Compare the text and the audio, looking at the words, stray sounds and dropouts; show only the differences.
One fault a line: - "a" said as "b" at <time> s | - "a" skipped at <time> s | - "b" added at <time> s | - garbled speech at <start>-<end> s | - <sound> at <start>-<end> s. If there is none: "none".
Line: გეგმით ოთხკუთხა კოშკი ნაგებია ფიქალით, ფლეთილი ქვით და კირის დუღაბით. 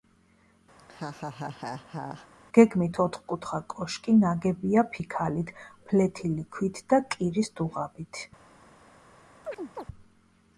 - laugh at 0.8-2.3 s
- chirp at 9.4-9.9 s